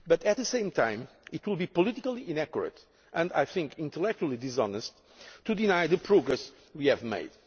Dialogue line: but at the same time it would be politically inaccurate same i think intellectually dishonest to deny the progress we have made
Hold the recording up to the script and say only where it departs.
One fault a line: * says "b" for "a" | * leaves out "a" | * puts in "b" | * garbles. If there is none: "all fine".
* says "and" for "same"